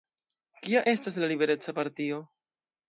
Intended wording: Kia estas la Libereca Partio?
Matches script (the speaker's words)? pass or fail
pass